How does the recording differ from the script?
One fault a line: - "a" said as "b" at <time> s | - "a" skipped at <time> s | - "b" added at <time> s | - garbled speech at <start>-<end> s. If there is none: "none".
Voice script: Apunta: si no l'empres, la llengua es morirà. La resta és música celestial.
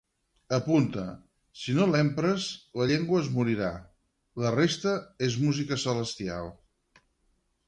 none